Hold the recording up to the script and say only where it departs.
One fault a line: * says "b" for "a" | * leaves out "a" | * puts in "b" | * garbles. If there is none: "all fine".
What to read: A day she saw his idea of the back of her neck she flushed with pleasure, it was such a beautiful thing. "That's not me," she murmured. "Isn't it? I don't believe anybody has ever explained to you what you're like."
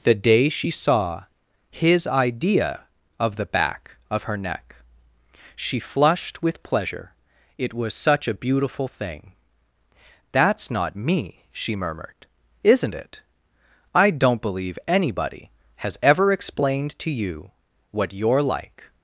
* says "The" for "A"